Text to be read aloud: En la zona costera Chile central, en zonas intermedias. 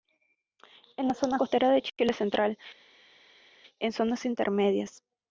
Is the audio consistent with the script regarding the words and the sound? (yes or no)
no